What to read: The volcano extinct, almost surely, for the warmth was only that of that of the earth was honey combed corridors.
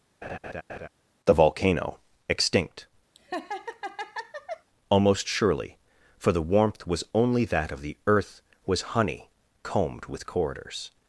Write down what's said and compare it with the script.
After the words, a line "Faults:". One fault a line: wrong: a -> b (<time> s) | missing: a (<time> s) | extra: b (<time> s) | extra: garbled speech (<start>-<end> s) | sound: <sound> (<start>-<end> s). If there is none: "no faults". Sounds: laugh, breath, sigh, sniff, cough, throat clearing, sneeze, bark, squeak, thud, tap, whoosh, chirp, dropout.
The volcano extinct, almost surely, for the warmth was only that of the earth was honey combed with corridors.
Faults:
sound: laugh (0.2-0.9 s)
sound: laugh (3.2-4.7 s)
missing: that of (7.8 s)
extra: with (10.1 s)